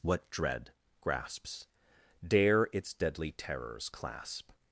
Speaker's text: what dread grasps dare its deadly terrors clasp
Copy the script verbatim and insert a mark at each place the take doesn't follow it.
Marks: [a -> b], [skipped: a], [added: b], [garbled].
what dread grasps dare its deadly terrors clasp